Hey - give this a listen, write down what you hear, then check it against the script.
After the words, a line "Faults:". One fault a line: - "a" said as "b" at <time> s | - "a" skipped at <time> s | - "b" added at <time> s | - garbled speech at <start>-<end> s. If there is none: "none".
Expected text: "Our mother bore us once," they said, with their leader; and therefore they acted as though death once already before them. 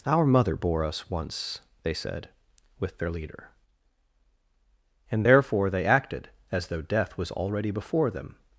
"Our mother bore us once," they said, with their leader; and therefore they acted as though death was already before them.
Faults:
- "once" said as "was" at 7.2 s